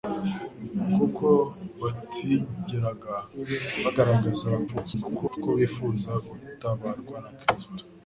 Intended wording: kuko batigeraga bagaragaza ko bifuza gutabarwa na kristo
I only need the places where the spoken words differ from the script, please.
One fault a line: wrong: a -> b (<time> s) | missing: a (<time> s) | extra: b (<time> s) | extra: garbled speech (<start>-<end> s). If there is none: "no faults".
extra: garbled speech (4.7-5.4 s)